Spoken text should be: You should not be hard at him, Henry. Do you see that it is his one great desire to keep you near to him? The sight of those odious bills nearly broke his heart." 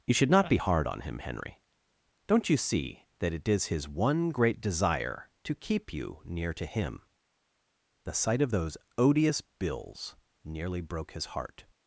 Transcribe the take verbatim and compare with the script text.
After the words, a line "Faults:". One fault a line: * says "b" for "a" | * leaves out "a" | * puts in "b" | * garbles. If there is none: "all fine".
You should not be hard on him, Henry. Don't you see that it is his one great desire to keep you near to him? The sight of those odious bills nearly broke his heart."
Faults:
* says "on" for "at"
* says "Don't" for "Do"